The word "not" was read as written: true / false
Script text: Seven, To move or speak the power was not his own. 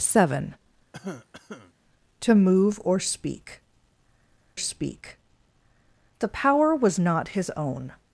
true